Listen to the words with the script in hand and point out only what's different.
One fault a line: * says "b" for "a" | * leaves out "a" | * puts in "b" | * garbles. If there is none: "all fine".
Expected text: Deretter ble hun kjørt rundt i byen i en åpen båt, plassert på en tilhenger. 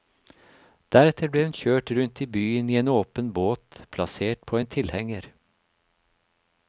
all fine